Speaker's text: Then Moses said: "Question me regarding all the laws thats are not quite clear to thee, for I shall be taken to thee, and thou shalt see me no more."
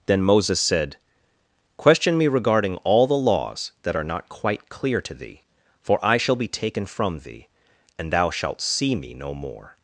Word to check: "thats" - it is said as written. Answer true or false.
false